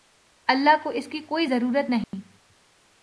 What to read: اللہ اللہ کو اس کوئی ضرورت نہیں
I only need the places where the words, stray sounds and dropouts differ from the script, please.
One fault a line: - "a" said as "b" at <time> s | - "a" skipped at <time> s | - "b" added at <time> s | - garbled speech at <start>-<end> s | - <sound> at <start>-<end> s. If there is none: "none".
- "اللہ" skipped at 0.8 s
- "کی" added at 1.1 s
- dropout at 2.0-2.1 s